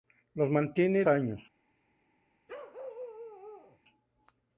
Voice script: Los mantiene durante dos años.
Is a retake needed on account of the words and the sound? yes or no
yes